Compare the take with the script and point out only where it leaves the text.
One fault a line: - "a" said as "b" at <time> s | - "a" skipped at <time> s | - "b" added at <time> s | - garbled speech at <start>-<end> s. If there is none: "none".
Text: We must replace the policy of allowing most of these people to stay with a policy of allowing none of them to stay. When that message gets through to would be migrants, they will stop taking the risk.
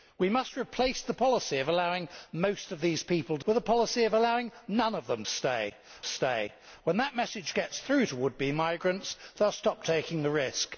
- "stay" skipped at 3.5 s
- "stay" added at 6.1 s